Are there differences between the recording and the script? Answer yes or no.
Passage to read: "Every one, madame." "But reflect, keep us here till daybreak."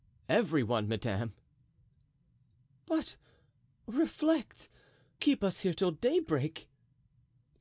no